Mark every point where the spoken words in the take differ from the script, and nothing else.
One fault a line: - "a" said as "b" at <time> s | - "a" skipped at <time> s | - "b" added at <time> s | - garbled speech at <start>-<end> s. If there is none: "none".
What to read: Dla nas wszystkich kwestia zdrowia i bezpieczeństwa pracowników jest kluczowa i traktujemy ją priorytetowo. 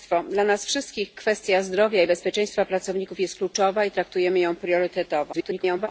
- garbled speech at 5.3-5.9 s